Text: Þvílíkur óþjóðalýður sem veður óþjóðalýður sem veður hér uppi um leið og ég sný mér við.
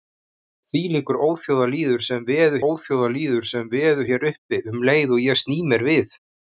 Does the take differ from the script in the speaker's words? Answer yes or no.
no